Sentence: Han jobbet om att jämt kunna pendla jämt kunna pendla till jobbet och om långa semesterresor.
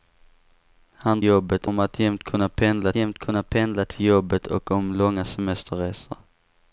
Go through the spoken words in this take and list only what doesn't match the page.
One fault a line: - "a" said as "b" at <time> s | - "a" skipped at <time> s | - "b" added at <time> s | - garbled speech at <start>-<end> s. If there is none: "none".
none